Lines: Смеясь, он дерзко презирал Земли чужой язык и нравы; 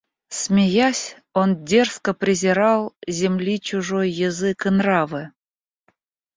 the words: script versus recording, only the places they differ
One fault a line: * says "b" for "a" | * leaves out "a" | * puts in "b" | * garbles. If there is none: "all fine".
all fine